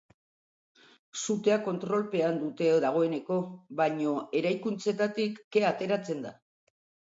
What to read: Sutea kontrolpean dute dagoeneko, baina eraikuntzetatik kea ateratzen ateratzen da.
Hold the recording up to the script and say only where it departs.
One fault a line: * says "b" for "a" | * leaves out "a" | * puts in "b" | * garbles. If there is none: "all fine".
* leaves out "ateratzen"